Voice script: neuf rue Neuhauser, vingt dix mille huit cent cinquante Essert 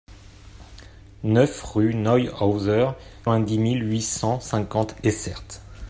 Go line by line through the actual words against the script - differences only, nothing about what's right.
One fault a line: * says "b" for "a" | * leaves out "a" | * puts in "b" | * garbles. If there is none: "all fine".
all fine